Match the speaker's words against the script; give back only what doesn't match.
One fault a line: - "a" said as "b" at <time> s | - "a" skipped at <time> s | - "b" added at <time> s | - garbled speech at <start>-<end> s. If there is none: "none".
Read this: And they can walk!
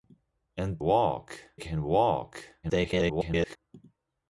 - "they" said as "walk" at 0.8 s
- garbled speech at 2.6-3.6 s